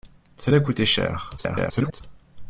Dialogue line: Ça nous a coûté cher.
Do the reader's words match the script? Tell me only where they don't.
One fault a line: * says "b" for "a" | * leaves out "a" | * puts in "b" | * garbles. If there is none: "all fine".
* leaves out "nous"
* garbles